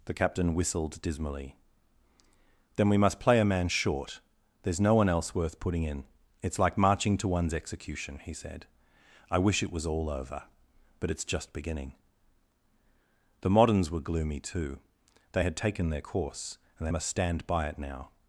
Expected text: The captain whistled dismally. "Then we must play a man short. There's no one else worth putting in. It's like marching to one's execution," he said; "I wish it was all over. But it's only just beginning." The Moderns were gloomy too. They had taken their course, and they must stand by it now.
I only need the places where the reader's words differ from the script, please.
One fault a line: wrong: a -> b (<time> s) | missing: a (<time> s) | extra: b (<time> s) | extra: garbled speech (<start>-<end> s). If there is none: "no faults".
missing: only (11.2 s)